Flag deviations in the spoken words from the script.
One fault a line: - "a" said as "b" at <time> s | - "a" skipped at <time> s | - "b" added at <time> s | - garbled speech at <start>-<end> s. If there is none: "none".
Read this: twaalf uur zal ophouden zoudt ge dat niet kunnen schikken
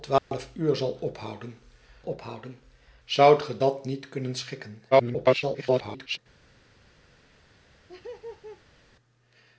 - "ophouden" added at 2.0 s
- garbled speech at 4.9-6.2 s